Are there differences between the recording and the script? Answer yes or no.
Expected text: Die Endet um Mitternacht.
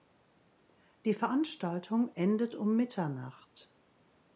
yes